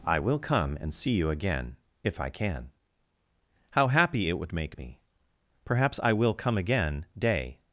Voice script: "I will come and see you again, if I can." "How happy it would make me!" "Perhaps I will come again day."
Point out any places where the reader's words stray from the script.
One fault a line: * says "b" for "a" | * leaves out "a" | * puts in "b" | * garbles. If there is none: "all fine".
all fine